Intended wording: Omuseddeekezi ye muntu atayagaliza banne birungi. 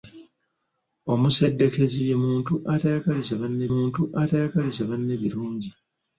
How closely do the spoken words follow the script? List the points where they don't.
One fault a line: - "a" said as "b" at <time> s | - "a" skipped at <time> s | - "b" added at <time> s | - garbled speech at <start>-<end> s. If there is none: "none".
- "muntu atayagaliza banne" added at 3.7 s